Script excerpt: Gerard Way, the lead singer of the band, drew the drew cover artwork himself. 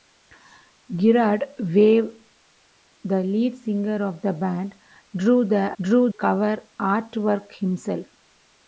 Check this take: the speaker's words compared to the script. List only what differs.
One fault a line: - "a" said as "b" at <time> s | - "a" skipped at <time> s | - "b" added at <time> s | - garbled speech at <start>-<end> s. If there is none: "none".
none